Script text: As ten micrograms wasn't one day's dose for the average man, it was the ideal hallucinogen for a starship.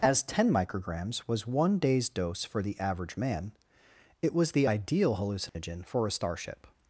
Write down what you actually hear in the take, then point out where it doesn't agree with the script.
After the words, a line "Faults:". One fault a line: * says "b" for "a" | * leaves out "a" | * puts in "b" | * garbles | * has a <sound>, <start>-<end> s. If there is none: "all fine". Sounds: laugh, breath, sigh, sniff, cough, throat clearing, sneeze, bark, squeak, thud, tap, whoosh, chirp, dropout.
As ten micrograms was one day's dose for the average man, it was the ideal hallucinogen for a starship.
Faults:
* says "was" for "wasn't"
* has a dropout, 5.5-5.5 s